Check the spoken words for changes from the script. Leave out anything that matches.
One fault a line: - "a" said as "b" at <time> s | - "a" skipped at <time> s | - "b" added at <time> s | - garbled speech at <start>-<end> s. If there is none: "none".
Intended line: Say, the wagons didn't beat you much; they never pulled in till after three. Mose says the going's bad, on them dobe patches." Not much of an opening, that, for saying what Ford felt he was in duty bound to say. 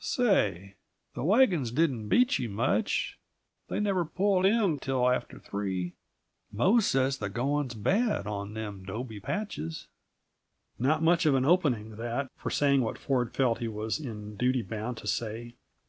none